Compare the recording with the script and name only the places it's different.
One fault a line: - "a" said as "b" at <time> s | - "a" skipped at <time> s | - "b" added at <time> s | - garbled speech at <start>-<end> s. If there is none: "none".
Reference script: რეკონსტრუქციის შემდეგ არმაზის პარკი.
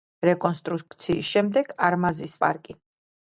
none